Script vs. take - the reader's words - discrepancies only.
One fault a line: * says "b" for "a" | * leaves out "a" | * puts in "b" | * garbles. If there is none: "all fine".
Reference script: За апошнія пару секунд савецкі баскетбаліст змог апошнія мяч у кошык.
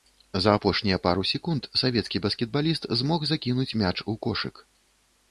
* says "закінуць" for "апошнія"